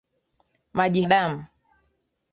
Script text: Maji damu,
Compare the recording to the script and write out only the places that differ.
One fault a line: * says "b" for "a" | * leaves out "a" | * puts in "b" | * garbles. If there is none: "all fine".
all fine